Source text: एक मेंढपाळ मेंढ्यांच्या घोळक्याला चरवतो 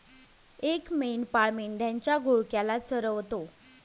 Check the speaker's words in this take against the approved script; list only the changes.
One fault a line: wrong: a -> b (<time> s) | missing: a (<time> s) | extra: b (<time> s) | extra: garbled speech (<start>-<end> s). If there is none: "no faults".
no faults